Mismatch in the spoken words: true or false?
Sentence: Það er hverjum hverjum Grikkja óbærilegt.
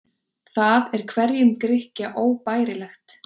true